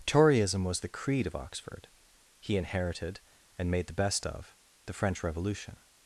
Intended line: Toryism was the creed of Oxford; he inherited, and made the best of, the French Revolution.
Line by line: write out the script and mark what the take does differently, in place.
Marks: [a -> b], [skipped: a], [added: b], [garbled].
Toryism was the creed of Oxford; he inherited, and made the best of, the French Revolution.